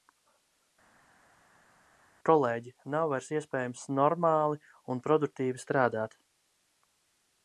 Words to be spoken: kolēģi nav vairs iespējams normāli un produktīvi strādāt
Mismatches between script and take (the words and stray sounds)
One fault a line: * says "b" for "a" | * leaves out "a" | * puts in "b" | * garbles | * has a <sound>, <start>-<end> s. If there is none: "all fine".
all fine